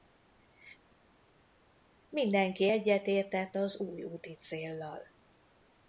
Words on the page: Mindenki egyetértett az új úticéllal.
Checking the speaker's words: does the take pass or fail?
pass